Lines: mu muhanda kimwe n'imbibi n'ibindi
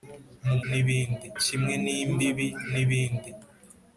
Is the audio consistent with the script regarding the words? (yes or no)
no